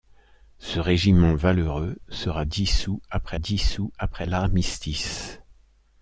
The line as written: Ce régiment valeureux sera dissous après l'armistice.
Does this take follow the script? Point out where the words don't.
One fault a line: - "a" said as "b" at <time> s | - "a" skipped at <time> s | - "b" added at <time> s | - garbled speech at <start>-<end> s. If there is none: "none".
- "dissous après" added at 3.4 s